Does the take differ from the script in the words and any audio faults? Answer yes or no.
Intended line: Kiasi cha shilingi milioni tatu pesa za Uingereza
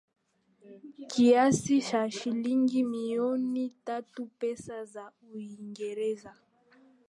no